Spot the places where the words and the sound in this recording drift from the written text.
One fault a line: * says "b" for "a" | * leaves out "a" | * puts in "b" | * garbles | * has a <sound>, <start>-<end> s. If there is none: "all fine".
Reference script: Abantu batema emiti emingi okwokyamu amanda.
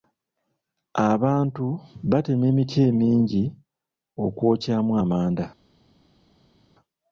all fine